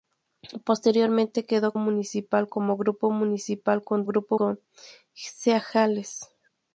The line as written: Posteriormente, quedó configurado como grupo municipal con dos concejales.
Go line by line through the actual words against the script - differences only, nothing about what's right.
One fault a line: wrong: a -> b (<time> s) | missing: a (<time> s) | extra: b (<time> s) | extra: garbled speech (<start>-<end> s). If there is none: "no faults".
wrong: configurado -> municipal (1.7 s)
wrong: dos -> grupo (4.0 s)